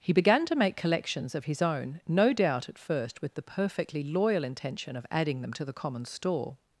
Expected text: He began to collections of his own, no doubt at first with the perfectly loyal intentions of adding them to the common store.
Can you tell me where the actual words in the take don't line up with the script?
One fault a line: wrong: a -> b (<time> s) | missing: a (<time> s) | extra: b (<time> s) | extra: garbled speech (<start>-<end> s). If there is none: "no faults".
extra: make (0.6 s)
wrong: intentions -> intention (4.4 s)